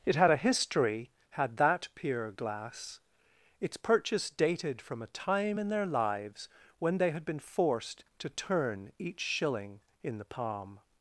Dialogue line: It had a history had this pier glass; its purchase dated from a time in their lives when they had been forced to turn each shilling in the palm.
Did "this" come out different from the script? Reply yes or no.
yes